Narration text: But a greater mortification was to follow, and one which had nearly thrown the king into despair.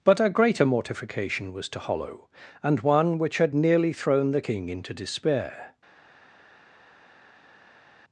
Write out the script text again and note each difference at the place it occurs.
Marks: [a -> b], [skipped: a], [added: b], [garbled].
But a greater mortification was to [follow, -> hollow] and one which had nearly thrown the king into despair.